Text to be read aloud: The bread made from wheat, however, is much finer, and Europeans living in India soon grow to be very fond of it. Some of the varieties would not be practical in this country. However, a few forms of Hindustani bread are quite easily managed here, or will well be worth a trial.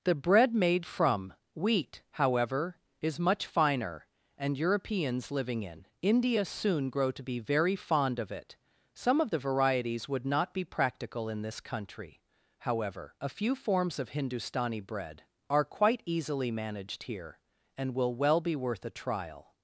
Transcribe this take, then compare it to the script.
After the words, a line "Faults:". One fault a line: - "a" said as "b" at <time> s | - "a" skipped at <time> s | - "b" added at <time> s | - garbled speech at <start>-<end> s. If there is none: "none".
The bread made from wheat, however, is much finer, and Europeans living in India soon grow to be very fond of it. Some of the varieties would not be practical in this country. However, a few forms of Hindustani bread are quite easily managed here, and will well be worth a trial.
Faults:
- "or" said as "and" at 17.8 s